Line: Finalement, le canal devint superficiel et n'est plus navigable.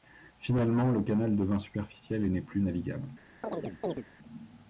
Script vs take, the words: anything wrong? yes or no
no